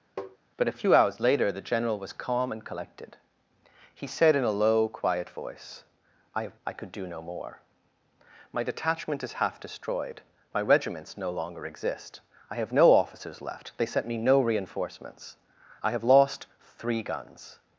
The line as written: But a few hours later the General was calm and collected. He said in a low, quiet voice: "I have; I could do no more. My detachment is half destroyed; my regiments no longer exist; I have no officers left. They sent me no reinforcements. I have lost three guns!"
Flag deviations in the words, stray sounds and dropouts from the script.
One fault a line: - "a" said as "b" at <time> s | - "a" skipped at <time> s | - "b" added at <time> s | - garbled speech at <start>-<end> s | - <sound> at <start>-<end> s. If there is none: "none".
- tap at 0.2-0.4 s